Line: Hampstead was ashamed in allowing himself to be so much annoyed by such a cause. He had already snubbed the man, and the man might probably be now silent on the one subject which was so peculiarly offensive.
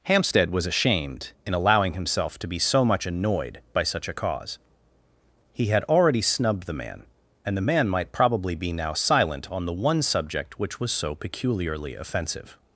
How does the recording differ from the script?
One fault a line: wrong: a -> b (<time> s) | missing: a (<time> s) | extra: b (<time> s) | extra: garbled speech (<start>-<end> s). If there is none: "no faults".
no faults